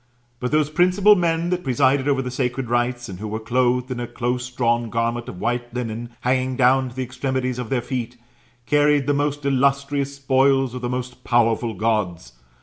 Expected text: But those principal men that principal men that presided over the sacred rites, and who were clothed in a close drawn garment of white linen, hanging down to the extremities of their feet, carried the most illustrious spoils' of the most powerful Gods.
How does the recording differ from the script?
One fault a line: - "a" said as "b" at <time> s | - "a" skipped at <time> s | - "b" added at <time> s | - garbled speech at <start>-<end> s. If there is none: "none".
- "principal men that" skipped at 1.6 s